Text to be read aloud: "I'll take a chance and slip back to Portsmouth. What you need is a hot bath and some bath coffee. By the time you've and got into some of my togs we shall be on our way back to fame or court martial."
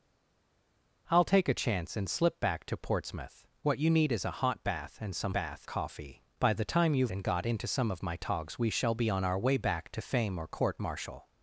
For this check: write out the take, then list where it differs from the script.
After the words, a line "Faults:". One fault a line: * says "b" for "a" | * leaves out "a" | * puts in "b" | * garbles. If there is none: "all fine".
"I'll take a chance and slip back to Portsmouth. What you need is a hot bath and some bath coffee. By the time you've and got into some of my togs we shall be on our way back to fame or court martial."
Faults:
all fine